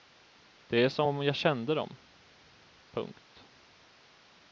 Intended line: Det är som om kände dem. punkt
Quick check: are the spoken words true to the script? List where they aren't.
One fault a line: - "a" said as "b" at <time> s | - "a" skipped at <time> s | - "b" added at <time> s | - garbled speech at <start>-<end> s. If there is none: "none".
- "jag" added at 1.2 s